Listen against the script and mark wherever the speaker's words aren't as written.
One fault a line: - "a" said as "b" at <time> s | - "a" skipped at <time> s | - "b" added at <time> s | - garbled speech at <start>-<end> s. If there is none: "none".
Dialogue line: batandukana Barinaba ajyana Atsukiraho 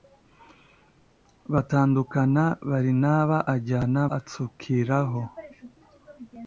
none